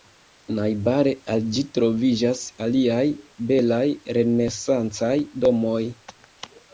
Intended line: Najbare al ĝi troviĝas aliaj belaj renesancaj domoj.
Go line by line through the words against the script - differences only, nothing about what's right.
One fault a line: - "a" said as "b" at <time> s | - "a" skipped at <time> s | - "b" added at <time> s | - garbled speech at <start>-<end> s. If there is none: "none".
none